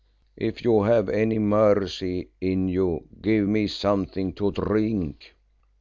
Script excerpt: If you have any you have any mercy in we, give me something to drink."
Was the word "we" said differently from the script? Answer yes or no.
yes